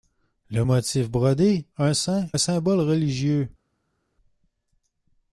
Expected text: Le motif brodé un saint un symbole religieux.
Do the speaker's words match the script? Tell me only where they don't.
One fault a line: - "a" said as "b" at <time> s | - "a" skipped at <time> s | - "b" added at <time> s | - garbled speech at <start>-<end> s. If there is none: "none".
none